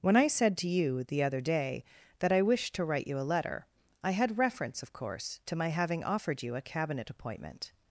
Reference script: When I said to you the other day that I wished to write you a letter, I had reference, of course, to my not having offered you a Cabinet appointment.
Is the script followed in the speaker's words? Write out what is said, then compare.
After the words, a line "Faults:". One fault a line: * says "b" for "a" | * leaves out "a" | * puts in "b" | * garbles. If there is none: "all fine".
When I said to you the other day that I wished to write you a letter, I had reference, of course, to my having offered you a Cabinet appointment.
Faults:
* leaves out "not"